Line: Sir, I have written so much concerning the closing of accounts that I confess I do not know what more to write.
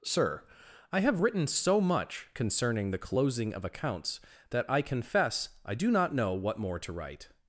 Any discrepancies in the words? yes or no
no